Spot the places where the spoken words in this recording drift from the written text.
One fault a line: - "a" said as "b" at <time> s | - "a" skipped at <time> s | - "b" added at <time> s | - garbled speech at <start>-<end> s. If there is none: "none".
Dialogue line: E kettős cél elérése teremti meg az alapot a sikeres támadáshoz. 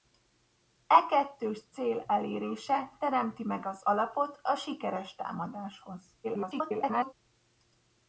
- garbled speech at 6.2-7.1 s